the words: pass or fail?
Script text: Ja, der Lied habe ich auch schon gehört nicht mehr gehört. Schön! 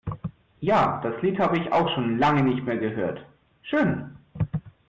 fail